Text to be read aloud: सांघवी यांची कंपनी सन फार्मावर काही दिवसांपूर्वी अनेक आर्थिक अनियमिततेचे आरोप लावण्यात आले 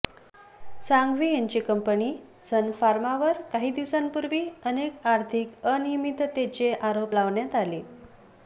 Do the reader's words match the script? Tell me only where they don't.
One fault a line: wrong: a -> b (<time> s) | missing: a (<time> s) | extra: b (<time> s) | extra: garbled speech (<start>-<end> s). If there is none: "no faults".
no faults